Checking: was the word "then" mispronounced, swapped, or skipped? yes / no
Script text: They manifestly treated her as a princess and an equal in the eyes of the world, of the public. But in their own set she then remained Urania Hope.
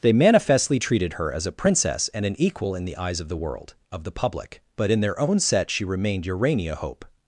yes